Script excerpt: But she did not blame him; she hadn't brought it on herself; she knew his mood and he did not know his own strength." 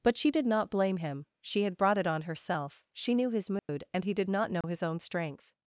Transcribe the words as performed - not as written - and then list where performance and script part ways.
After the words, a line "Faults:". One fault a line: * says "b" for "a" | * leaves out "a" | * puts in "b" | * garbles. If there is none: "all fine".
But she did not blame him; she had brought it on herself; she knew his mood and he did not know his own strength."
Faults:
* says "had" for "hadn't"